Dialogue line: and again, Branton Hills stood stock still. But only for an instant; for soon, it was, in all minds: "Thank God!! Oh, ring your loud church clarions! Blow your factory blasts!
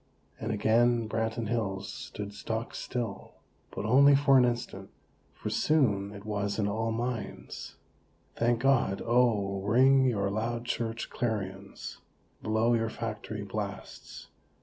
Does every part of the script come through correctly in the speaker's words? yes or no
yes